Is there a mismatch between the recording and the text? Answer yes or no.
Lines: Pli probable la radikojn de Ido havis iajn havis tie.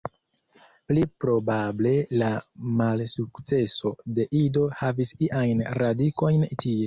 yes